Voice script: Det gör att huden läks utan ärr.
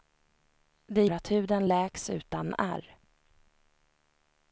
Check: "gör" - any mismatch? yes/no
yes